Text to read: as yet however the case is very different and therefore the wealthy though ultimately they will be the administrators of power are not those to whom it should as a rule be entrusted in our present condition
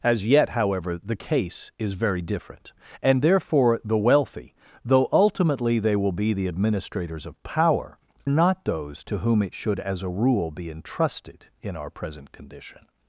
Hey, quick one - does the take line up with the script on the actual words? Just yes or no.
no